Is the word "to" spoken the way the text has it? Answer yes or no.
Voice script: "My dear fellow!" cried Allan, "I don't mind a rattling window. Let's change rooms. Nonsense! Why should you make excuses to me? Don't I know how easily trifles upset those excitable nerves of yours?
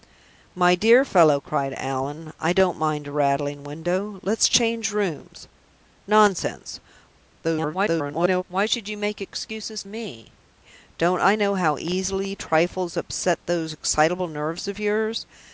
no